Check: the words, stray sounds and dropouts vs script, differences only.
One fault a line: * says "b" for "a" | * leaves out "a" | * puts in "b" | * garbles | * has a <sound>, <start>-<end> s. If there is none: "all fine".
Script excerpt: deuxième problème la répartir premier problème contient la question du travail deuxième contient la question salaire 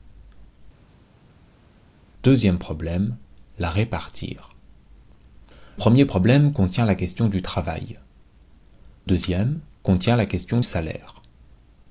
all fine